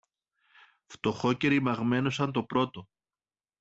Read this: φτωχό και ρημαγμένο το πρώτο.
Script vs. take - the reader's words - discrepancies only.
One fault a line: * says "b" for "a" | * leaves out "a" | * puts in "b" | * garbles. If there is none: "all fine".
* puts in "σαν"